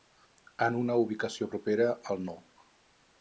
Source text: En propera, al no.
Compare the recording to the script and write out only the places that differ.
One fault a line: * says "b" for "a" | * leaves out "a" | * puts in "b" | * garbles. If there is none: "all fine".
* puts in "una ubicació"